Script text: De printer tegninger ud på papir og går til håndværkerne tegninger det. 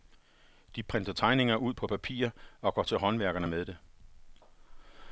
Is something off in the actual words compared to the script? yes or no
yes